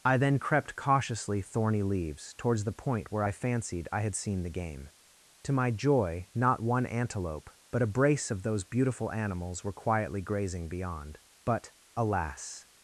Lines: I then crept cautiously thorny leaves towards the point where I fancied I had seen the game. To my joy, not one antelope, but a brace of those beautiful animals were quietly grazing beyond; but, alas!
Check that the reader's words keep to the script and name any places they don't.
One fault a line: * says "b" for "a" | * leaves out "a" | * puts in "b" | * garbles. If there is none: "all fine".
all fine